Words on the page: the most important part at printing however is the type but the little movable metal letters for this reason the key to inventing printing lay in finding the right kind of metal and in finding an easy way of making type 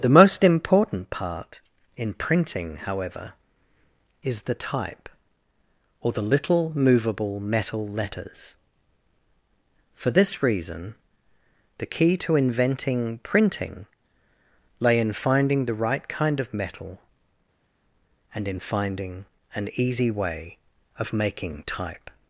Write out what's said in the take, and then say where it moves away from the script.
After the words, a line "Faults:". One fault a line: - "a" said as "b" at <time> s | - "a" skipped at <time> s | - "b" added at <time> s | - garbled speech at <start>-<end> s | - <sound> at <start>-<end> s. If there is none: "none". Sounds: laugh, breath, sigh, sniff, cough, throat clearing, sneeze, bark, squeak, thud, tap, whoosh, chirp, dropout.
the most important part in printing however is the type or the little movable metal letters for this reason the key to inventing printing lay in finding the right kind of metal and in finding an easy way of making type
Faults:
- "at" said as "in" at 1.9 s
- "but" said as "or" at 6.0 s